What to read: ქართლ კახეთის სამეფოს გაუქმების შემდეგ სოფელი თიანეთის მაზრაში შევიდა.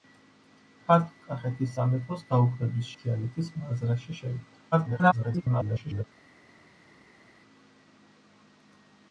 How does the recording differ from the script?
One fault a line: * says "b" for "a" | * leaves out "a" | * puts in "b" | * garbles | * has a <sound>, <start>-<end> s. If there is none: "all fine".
* leaves out "შემდეგ სოფელი"
* garbles